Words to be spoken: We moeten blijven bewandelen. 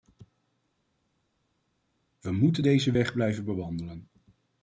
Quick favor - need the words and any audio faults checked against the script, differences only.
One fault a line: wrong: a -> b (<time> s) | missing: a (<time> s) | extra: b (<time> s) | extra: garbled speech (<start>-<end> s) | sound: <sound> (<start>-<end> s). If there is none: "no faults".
extra: deze weg (2.6 s)